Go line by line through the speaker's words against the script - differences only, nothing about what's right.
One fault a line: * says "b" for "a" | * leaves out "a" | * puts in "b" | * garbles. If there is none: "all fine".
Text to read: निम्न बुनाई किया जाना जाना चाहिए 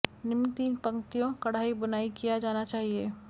* puts in "तीन पंक्तियों कढ़ाई"
* leaves out "जाना"